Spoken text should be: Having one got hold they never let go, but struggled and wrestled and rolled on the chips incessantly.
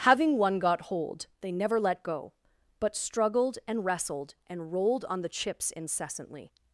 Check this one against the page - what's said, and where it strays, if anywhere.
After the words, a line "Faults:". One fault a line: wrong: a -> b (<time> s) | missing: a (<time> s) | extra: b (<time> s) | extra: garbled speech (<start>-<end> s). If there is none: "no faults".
Having one got hold they never let go, but struggled and wrestled and rolled on the chips incessantly.
Faults:
no faults